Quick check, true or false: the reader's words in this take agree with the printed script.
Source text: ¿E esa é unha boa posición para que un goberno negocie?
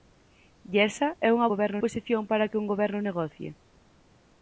false